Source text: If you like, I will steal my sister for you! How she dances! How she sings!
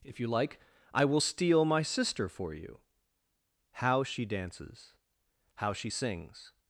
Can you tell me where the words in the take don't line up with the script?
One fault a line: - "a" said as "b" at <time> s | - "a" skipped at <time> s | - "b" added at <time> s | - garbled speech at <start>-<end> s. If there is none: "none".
none